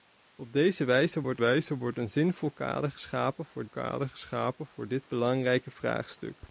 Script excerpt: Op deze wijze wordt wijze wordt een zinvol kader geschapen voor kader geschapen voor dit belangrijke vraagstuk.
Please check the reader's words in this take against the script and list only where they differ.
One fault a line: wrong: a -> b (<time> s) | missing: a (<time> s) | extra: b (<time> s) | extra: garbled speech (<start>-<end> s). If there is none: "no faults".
no faults